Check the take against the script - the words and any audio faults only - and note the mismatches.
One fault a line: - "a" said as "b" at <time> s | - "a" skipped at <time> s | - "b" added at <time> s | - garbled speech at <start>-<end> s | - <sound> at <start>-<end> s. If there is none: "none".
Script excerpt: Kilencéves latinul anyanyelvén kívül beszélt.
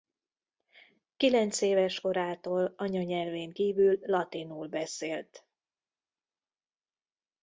- "latinul" said as "korától" at 2.0 s
- "latinul" added at 4.0 s